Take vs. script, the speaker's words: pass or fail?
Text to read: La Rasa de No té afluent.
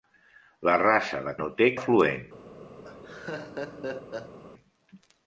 pass